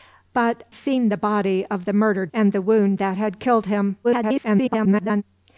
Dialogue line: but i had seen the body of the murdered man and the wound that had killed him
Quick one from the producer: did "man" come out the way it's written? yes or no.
no